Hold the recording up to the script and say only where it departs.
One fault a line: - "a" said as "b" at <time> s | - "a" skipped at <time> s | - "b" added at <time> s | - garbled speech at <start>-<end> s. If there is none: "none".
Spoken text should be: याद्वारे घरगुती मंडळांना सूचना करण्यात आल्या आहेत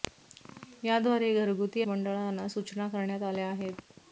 none